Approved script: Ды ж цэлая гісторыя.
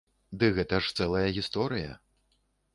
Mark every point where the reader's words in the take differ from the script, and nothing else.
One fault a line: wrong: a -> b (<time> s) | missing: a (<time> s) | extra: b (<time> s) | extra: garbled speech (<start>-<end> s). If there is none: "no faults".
extra: гэта (0.6 s)